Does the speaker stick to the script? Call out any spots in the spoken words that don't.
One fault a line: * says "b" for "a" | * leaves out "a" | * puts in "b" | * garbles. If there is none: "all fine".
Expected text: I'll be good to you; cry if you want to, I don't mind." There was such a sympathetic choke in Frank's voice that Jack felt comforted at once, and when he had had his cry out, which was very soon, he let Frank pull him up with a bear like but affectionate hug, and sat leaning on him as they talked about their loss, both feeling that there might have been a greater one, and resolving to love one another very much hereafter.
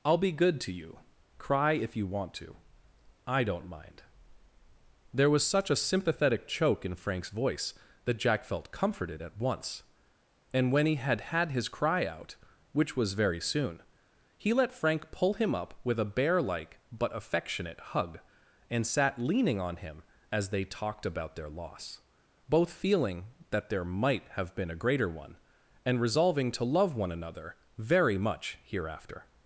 all fine